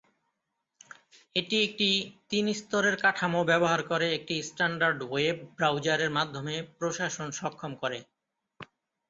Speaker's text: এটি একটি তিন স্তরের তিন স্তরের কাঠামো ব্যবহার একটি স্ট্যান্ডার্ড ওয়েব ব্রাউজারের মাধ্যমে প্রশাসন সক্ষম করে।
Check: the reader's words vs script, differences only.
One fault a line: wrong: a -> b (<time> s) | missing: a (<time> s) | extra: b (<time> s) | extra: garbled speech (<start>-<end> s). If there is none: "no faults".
missing: তিন স্তরের (3.0 s)
extra: করে (3.8 s)